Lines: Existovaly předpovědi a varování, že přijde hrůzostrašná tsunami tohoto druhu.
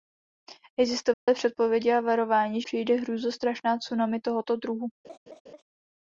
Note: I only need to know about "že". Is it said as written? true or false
false